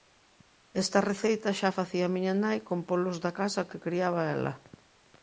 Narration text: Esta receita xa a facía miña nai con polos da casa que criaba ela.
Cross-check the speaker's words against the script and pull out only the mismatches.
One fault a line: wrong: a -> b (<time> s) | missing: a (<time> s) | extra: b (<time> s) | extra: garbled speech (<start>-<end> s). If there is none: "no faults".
no faults